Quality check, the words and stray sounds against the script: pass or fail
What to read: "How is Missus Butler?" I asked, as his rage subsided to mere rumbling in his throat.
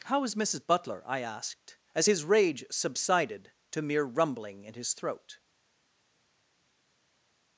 pass